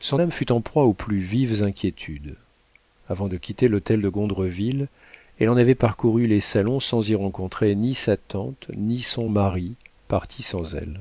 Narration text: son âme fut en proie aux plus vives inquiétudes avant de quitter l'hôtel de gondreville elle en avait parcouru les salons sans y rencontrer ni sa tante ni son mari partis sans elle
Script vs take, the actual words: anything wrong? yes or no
no